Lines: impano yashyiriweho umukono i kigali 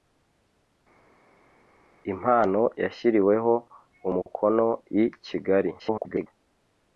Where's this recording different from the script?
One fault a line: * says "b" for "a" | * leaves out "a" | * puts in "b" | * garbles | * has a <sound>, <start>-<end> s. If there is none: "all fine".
* garbles